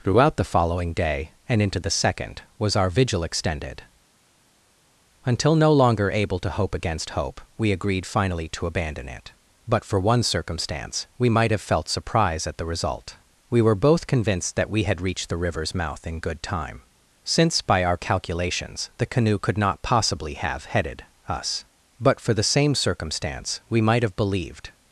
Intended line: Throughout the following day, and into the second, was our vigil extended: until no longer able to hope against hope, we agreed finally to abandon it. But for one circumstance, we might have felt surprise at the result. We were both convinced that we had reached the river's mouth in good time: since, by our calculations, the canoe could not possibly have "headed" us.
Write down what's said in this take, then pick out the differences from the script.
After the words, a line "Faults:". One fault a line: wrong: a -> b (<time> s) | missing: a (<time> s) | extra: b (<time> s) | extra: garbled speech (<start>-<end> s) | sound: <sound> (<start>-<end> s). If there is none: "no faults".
Throughout the following day, and into the second, was our vigil extended: until no longer able to hope against hope, we agreed finally to abandon it. But for one circumstance, we might have felt surprise at the result. We were both convinced that we had reached the river's mouth in good time: since, by our calculations, the canoe could not possibly have "headed" us. But for the same circumstance, we might have believed
Faults:
extra: But for the same circumstance we might have believed (22.0 s)